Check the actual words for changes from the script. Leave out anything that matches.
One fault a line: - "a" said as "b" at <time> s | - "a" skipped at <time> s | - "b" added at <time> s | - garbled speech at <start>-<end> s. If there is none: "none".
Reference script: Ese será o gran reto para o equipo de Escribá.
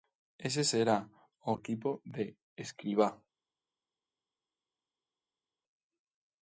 - "gran reto para" skipped at 1.5 s